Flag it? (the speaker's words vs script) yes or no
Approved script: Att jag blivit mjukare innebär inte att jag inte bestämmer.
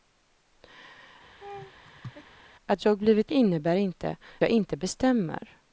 yes